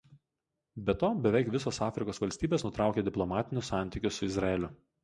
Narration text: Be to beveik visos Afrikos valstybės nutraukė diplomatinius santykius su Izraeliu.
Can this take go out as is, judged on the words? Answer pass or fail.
pass